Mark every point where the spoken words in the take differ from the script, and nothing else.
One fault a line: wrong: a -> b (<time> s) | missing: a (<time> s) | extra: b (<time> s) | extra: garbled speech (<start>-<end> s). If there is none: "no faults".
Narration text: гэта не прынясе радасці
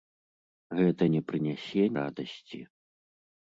no faults